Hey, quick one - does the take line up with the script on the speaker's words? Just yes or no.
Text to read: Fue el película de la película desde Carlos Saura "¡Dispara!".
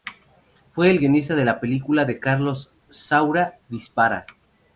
no